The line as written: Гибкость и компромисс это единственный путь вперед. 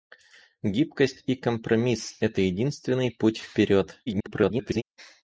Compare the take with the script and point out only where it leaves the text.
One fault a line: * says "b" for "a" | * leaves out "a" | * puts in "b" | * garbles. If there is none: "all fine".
* garbles